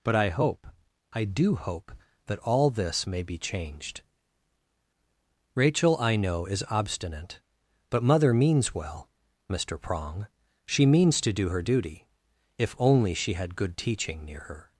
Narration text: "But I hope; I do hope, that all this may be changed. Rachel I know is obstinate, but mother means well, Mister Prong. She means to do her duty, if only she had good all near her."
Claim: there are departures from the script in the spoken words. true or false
true